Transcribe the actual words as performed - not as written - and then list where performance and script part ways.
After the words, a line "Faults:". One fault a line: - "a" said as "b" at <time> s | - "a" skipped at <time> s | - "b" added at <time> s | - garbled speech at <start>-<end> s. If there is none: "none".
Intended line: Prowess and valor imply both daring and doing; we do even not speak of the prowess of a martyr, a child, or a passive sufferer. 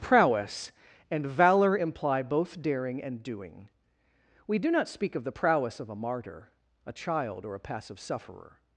Prowess and valor imply both daring and doing; we do not speak of the prowess of a martyr, a child, or a passive sufferer.
Faults:
- "even" skipped at 4.7 s